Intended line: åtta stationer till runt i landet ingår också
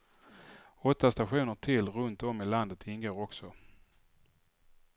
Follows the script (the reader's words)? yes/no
no